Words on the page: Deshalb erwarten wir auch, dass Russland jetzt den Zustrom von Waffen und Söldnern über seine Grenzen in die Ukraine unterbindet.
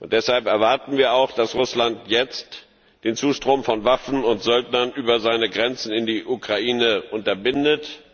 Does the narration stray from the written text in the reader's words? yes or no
no